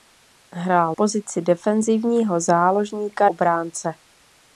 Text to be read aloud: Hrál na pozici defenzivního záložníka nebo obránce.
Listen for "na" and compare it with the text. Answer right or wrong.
wrong